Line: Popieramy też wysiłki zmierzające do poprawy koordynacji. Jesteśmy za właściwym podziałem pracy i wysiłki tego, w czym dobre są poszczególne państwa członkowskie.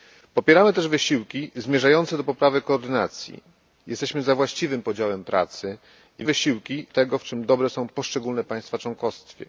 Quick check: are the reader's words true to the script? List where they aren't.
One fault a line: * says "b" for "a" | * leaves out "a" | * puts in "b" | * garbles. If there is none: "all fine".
all fine